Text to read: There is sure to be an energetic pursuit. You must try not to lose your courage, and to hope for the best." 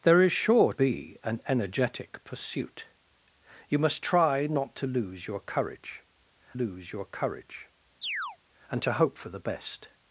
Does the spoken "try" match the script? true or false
true